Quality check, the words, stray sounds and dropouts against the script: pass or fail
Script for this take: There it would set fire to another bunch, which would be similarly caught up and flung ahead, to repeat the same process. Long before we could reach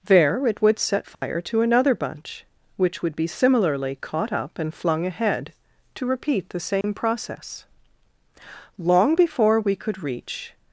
fail